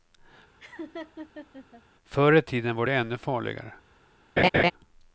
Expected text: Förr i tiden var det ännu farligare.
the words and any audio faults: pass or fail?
fail